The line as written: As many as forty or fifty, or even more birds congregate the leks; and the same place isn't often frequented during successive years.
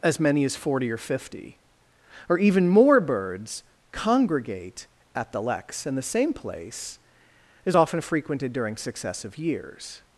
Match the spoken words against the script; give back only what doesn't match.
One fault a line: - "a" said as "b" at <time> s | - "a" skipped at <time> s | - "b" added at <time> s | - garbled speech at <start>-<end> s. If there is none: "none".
- "at" added at 5.1 s
- "isn't" said as "is" at 7.7 s